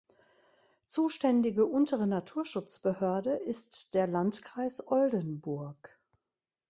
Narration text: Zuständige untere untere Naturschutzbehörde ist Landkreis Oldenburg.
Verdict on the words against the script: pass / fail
fail